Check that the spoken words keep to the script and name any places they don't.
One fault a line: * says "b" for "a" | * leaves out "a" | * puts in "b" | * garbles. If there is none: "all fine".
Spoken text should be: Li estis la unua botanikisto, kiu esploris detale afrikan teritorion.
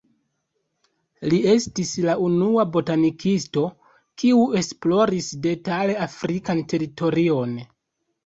all fine